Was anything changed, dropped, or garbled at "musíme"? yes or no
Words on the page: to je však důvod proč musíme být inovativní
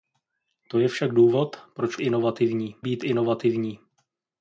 yes